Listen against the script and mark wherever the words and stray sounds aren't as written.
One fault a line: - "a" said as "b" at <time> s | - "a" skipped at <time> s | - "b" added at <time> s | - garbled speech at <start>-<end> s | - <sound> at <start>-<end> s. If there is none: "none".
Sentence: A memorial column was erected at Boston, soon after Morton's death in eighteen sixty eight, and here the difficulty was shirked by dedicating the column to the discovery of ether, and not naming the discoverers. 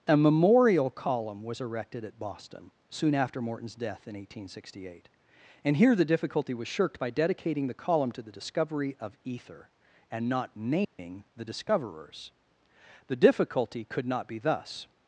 - dropout at 10.8-11.0 s
- "The difficulty could not be thus" added at 13.1 s